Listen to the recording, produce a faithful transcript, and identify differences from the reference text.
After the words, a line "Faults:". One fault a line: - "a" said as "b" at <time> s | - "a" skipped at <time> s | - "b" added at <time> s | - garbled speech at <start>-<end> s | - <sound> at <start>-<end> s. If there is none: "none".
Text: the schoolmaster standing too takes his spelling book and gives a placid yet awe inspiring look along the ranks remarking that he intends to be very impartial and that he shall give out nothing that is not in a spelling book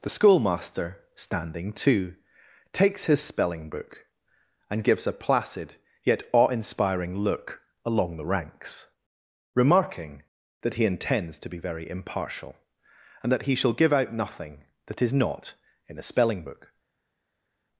the schoolmaster standing too takes his spelling book and gives a placid yet awe inspiring look along the ranks remarking that he intends to be very impartial and that he shall give out nothing that is not in a spelling book
Faults:
none